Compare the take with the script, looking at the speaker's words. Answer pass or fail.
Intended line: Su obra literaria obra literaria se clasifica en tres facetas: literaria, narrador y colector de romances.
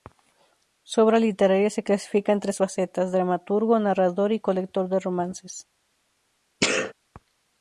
fail